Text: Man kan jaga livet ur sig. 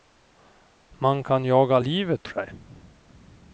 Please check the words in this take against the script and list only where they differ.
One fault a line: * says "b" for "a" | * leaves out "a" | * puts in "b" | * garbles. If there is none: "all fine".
* leaves out "ur"